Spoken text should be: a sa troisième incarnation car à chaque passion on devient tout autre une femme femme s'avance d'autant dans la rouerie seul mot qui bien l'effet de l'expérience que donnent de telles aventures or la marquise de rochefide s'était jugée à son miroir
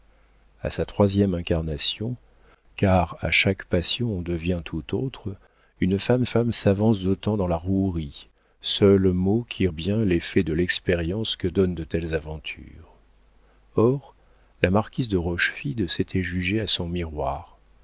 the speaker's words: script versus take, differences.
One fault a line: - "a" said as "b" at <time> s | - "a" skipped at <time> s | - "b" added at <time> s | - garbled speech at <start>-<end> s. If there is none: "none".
none